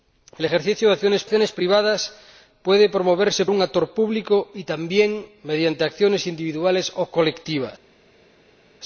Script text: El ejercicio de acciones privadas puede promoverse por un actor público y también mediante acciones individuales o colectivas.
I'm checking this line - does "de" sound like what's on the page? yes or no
yes